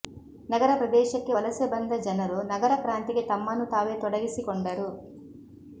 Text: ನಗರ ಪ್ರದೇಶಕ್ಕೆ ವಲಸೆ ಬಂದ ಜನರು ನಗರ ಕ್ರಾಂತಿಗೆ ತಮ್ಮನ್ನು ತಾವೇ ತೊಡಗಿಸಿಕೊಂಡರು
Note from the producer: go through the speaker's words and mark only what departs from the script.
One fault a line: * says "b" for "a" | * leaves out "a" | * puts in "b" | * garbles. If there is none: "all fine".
all fine